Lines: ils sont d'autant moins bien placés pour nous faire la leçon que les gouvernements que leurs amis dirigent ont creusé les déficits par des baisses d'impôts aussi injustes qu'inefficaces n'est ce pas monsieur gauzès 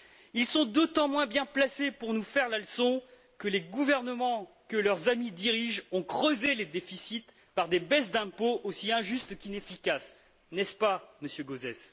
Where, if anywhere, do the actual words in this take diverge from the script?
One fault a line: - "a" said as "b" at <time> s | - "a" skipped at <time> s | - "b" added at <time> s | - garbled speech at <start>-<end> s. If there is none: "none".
none